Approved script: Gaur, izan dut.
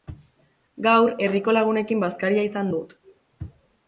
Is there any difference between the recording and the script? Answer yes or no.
yes